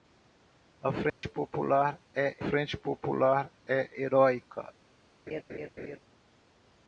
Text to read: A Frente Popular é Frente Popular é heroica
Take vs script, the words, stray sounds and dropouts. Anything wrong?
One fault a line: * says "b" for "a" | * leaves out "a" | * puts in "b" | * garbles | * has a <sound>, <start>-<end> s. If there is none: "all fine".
* has a dropout, 1.1-1.2 s
* has a laugh, 5.3-6.0 s